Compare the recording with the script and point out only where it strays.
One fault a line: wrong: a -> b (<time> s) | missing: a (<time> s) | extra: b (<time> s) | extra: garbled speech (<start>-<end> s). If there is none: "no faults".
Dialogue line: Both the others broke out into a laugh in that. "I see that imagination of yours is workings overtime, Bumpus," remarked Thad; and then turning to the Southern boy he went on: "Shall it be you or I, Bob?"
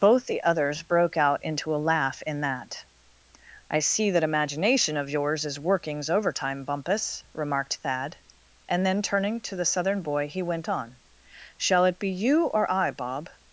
no faults